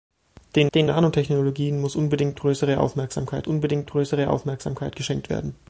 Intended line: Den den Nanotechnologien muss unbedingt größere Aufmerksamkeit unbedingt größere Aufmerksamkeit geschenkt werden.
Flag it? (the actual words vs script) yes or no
no